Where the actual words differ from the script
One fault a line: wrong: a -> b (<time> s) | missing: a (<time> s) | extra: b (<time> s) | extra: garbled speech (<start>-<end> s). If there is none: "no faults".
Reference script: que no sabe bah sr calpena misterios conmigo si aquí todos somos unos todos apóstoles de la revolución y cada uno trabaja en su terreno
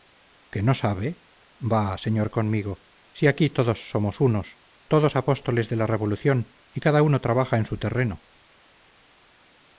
missing: calpena misterios (2.3 s)